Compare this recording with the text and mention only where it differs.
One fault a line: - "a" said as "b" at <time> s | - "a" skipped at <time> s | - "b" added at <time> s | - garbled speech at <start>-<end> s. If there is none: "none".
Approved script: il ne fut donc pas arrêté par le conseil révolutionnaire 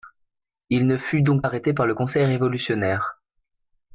- "pas" skipped at 1.4 s